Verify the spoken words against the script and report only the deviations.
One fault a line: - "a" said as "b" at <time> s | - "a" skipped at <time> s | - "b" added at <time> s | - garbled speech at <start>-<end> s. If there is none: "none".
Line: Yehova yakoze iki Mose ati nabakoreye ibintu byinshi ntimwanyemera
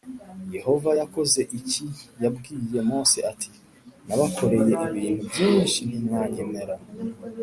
- "Yabwiye" added at 2.2 s